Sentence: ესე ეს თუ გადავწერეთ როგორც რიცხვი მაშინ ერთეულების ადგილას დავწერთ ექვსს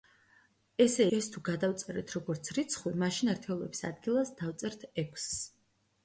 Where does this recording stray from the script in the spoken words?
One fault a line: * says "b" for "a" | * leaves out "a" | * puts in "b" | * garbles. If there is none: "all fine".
all fine